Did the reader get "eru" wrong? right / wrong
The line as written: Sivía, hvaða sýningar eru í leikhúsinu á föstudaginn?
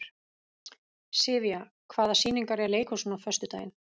wrong